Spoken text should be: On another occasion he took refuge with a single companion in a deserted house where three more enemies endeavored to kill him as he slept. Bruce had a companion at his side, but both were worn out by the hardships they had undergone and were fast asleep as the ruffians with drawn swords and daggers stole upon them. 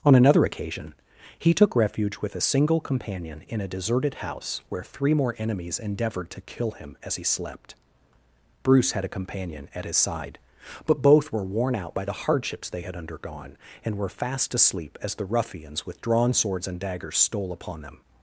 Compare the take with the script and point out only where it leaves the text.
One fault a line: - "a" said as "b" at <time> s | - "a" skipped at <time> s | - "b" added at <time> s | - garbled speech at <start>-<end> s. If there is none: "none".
none